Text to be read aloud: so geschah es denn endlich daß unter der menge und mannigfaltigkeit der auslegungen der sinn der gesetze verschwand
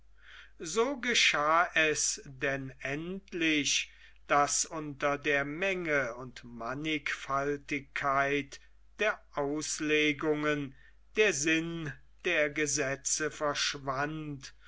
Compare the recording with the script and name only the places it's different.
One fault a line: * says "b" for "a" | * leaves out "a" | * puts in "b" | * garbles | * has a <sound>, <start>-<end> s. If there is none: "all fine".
all fine